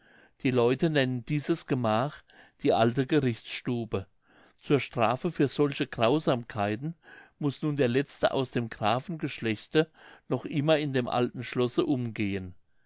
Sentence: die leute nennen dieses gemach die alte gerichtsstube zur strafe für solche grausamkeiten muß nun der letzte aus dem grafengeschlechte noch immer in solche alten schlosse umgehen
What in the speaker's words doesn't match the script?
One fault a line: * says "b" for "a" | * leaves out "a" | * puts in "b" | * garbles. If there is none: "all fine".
* says "dem" for "solche"